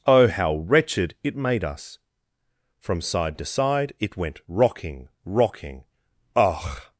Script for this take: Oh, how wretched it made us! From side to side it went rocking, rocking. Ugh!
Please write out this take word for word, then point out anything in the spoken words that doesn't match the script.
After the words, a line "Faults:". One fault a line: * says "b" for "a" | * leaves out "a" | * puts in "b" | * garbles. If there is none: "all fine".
Oh, how wretched it made us! From side to side it went rocking, rocking. Ugh!
Faults:
all fine